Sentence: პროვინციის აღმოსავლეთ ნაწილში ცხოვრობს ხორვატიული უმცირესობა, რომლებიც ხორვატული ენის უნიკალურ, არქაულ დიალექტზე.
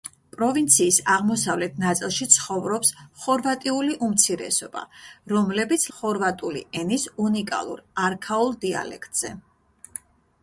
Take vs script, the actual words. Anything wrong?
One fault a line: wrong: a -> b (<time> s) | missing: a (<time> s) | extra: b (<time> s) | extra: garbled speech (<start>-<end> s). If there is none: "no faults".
no faults